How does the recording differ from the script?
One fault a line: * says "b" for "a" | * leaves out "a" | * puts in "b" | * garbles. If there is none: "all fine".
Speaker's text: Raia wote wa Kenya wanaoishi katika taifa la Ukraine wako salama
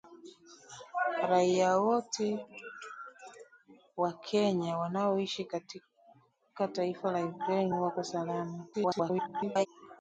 * garbles